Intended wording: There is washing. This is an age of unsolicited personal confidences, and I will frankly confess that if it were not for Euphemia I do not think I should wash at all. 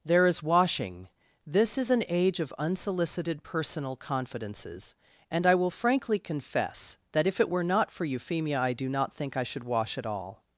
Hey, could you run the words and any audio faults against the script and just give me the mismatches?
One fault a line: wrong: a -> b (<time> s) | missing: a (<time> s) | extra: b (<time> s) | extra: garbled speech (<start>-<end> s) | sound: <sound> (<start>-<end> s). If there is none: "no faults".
no faults